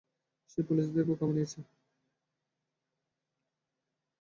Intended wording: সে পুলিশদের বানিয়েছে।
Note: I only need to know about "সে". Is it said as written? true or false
true